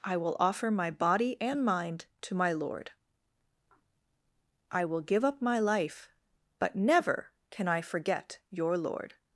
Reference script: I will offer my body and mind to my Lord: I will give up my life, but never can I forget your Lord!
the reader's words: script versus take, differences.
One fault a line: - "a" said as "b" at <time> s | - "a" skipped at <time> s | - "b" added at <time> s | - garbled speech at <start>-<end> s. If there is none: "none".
none